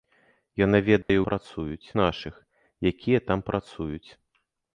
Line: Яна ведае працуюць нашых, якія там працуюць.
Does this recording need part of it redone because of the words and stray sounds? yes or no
yes